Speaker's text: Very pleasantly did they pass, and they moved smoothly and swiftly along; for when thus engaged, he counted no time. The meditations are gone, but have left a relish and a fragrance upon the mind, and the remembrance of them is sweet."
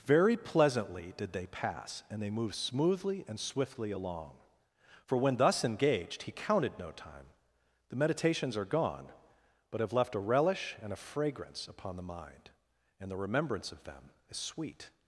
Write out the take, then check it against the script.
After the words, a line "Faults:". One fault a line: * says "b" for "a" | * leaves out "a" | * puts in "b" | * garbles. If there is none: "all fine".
Very pleasantly did they pass, and they moved smoothly and swiftly along; for when thus engaged, he counted no time. The meditations are gone, but have left a relish and a fragrance upon the mind, and the remembrance of them is sweet."
Faults:
all fine